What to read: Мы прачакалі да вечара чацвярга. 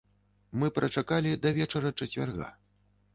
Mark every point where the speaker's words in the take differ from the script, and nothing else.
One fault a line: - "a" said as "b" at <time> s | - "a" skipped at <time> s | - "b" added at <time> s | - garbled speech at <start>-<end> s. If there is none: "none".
none